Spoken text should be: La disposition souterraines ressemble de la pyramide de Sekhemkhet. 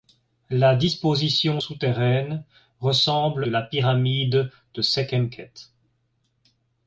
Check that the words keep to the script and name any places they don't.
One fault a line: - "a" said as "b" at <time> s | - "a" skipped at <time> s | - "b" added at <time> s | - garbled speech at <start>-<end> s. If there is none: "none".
none